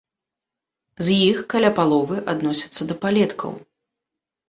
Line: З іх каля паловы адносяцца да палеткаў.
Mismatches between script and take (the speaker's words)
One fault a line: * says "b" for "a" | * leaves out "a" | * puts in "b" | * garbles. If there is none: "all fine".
all fine